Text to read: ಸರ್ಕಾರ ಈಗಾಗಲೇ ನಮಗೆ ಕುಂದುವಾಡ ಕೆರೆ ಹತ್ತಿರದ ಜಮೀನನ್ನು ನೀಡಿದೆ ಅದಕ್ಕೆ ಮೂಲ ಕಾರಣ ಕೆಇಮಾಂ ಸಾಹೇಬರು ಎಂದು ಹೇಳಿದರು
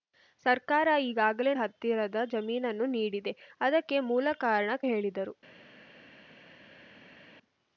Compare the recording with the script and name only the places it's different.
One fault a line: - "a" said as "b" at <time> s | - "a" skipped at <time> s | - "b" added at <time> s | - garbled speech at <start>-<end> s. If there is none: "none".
- "ನಮಗೆ ಕುಂದುವಾಡ ಕೆರೆ" skipped at 1.5 s
- "ಕೆಇಮಾಂ ಸಾಹೇಬರು ಎಂದು" skipped at 4.8 s